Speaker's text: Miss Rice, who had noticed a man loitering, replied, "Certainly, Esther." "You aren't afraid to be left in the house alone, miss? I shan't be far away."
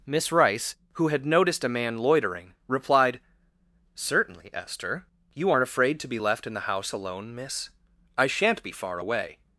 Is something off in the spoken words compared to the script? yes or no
no